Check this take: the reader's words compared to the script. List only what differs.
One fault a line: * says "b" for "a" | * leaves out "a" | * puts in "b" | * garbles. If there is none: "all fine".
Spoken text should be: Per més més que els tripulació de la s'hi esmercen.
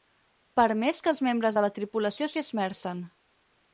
* leaves out "més"
* says "membres" for "tripulació"
* puts in "tripulació"